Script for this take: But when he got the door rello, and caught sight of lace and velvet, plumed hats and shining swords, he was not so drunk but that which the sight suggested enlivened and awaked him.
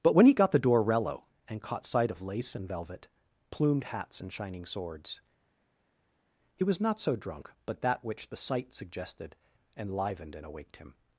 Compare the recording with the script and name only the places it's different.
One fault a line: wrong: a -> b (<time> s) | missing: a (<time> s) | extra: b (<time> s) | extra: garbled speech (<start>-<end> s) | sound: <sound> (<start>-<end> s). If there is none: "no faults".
no faults